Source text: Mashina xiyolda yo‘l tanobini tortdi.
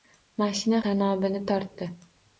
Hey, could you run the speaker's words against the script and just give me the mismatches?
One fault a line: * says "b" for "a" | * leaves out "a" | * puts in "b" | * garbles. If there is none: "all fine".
* leaves out "xiyolda yo‘l"